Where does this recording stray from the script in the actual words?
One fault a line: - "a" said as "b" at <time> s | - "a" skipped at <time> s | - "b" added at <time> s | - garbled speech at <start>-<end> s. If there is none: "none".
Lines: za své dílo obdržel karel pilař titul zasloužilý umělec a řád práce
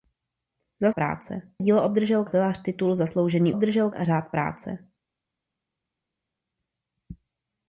- "své" said as "práce" at 0.9 s
- "karel" skipped at 2.2 s
- "umělec" said as "obdržel" at 3.5 s